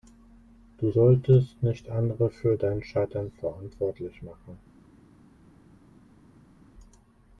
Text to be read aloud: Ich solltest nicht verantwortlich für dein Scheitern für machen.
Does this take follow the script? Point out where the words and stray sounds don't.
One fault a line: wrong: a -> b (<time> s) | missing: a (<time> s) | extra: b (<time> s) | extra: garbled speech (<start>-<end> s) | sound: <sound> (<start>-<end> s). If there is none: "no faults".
wrong: Ich -> Du (0.8 s)
wrong: verantwortlich -> andere (1.9 s)
wrong: für -> verantwortlich (3.3 s)